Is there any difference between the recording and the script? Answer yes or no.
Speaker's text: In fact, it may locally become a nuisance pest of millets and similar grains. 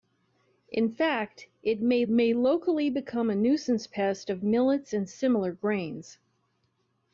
yes